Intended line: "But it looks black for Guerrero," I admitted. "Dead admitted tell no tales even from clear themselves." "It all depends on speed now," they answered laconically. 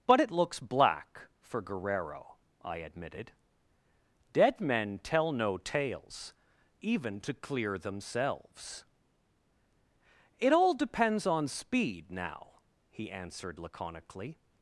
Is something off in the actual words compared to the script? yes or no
yes